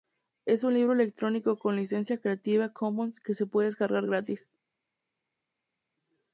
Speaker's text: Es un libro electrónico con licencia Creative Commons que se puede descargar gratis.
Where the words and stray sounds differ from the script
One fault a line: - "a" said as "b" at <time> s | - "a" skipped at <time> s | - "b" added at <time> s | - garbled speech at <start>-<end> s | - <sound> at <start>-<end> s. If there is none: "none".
none